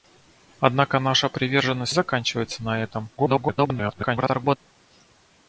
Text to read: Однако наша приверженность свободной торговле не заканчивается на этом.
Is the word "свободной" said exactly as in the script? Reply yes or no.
no